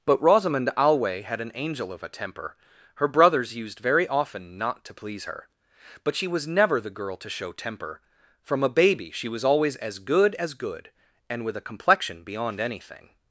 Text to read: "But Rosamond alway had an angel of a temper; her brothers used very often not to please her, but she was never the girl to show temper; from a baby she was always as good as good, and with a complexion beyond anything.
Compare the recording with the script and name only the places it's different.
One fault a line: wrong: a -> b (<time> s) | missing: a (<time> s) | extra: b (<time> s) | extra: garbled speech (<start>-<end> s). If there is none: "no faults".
no faults